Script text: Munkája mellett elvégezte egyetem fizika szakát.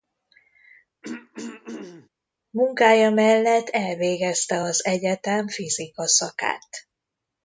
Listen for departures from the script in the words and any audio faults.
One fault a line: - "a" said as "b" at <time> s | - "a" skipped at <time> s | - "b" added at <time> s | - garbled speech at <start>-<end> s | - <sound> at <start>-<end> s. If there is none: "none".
- throat clearing at 1.0-2.1 s
- "az" added at 4.6 s